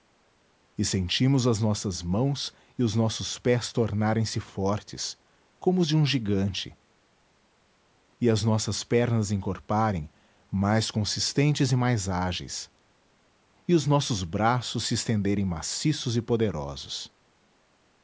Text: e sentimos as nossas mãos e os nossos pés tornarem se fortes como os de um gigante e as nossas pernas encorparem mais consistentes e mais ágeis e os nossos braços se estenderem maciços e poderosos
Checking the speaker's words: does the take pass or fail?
pass